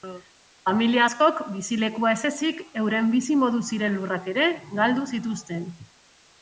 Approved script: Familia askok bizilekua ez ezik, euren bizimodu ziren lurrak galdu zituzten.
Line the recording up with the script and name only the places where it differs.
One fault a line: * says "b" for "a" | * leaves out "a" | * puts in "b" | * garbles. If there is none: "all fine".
* puts in "ere"